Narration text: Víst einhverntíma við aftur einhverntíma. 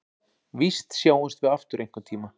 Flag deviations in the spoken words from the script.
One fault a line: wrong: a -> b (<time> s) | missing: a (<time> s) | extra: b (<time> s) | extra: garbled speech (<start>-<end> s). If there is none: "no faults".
wrong: einhverntíma -> sjáumst (1.0 s)